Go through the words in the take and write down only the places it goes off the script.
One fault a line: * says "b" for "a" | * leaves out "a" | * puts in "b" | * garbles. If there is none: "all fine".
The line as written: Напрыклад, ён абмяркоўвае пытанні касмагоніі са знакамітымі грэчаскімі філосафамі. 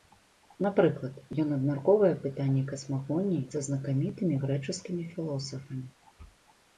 all fine